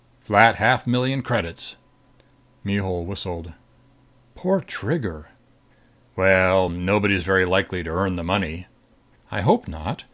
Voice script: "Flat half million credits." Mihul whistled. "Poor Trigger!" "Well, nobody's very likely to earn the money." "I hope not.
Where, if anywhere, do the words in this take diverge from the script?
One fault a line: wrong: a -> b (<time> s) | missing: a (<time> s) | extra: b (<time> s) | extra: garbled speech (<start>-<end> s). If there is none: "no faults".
no faults